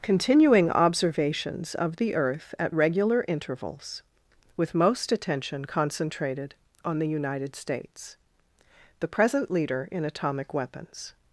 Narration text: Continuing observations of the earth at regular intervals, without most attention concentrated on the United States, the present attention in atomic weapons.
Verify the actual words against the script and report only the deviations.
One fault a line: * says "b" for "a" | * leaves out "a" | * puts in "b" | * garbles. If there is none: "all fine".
* says "with" for "without"
* says "leader" for "attention"